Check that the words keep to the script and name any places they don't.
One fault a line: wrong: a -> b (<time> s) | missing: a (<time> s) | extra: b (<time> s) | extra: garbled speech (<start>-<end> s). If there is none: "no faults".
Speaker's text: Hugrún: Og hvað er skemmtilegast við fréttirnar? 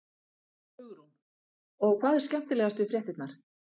no faults